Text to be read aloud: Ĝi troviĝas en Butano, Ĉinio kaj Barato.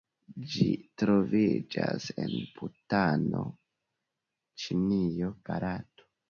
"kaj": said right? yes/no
no